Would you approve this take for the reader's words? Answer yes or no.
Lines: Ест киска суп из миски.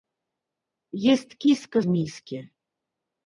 no